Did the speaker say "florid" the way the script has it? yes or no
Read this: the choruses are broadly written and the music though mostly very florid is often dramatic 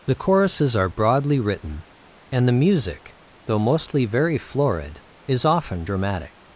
yes